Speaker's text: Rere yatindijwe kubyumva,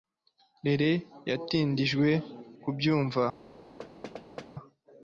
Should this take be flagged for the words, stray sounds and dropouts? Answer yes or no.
yes